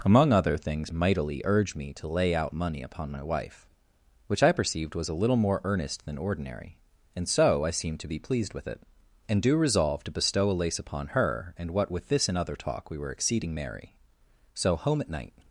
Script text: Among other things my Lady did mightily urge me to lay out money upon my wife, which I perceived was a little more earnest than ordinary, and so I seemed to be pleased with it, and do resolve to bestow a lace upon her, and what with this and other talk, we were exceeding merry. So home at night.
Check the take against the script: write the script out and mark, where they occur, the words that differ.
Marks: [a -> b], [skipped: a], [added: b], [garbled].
Among other things [skipped: my Lady did] mightily urge me to lay out money upon my wife, which I perceived was a little more earnest than ordinary, and so I seemed to be pleased with it, and do resolve to bestow a lace upon her, and what with this and other talk, we were exceeding merry. So home at night.